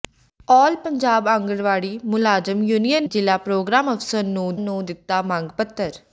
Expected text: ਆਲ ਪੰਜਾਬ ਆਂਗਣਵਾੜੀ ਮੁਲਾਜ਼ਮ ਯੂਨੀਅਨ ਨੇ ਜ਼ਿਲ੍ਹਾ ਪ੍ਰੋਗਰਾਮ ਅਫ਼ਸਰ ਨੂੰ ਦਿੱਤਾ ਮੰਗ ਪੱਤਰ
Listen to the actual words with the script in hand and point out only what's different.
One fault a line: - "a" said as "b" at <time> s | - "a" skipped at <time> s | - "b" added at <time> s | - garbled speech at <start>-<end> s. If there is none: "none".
- "ਨੇ" skipped at 3.1 s
- "ਨੂੰ" added at 4.6 s